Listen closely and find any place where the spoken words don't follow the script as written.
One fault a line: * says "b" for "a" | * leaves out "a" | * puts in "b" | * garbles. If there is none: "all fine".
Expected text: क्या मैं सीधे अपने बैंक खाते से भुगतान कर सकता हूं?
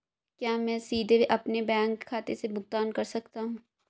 all fine